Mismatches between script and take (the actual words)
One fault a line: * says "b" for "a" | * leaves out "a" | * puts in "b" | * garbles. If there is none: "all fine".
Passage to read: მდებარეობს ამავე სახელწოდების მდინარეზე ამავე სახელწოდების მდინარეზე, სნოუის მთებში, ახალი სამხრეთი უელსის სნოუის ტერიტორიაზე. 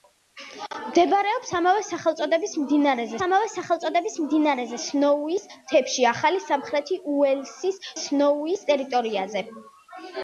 all fine